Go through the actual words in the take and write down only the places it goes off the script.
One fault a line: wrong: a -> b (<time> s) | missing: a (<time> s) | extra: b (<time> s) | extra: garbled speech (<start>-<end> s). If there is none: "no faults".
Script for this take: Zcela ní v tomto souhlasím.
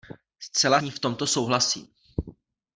no faults